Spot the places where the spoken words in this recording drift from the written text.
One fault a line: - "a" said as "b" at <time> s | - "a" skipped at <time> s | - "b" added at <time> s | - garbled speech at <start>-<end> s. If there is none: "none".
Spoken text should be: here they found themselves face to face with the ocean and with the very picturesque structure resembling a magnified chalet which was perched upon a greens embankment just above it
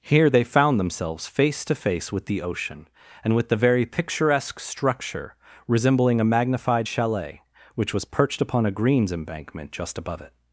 none